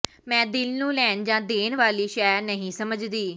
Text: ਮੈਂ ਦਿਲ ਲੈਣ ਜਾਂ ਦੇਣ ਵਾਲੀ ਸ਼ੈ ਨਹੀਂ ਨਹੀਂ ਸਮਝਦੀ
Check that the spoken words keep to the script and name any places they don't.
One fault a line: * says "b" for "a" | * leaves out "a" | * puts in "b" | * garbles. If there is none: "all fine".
* puts in "ਨੂੰ"
* leaves out "ਨਹੀਂ"